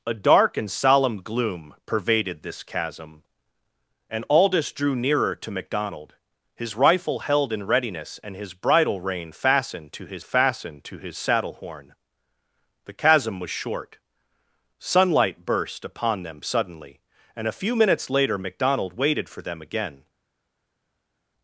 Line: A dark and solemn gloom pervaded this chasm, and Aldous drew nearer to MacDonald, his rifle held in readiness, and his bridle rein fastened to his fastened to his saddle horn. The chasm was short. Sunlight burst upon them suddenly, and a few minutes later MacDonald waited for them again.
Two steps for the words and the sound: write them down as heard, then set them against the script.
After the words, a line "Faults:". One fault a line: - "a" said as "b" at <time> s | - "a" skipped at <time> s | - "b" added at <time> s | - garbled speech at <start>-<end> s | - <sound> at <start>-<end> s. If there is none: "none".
A dark and solemn gloom pervaded this chasm, and Aldous drew nearer to MacDonald, his rifle held in readiness, and his bridle rein fastened to his fastened to his saddle horn. The chasm was short. Sunlight burst upon them suddenly, and a few minutes later MacDonald waited for them again.
Faults:
none